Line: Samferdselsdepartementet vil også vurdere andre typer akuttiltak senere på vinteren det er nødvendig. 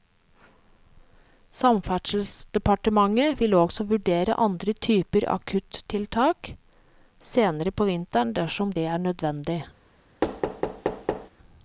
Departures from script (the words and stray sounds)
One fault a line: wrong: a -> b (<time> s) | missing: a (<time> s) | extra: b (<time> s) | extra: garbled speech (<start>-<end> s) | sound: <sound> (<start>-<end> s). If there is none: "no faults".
extra: dersom (8.4 s)
sound: thud (10.2-11.3 s)